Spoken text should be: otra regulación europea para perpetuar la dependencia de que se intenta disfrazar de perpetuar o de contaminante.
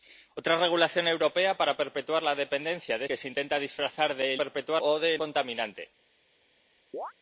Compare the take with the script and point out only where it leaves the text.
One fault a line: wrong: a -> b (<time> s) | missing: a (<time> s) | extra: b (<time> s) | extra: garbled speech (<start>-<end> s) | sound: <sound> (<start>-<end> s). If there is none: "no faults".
sound: chirp (6.9-7.1 s)